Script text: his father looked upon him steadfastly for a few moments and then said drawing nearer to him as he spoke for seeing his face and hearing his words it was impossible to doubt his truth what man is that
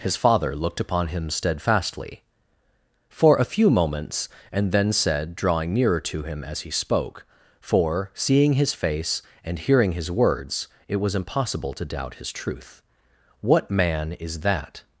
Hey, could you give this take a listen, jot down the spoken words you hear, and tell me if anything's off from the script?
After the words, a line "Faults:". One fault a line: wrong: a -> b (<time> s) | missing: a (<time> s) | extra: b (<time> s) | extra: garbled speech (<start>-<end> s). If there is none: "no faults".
his father looked upon him steadfastly for a few moments and then said drawing nearer to him as he spoke for seeing his face and hearing his words it was impossible to doubt his truth what man is that
Faults:
no faults